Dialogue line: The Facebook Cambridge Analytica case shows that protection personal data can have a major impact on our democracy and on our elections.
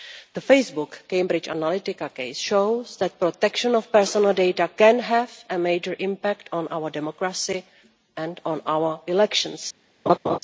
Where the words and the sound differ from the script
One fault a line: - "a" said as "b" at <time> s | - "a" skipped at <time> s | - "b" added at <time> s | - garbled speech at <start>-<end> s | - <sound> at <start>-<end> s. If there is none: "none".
- "of" added at 3.8 s
- laugh at 10.1-10.4 s